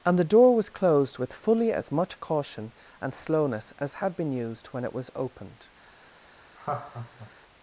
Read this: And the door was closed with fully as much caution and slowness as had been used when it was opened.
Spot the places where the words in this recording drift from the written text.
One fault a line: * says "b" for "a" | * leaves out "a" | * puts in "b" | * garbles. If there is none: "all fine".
all fine